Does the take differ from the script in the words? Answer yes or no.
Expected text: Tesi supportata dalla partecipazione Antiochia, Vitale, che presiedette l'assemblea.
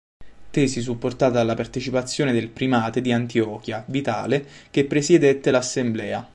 yes